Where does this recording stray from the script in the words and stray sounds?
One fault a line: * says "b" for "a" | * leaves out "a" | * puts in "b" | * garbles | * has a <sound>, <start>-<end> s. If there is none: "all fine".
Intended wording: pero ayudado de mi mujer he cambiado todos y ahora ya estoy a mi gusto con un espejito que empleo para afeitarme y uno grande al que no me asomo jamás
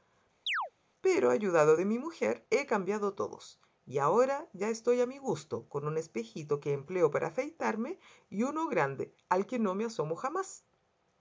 * has a chirp, 0.5-0.7 s